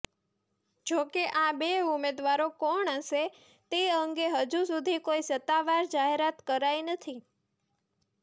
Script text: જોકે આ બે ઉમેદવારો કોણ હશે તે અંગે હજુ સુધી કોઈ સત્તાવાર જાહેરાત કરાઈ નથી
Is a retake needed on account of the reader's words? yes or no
no